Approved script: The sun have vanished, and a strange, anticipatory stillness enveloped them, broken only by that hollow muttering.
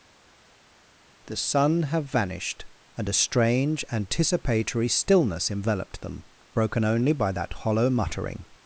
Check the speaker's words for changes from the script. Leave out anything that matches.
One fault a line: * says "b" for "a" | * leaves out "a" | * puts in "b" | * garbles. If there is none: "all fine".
all fine